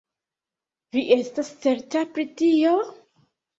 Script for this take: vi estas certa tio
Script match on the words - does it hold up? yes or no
no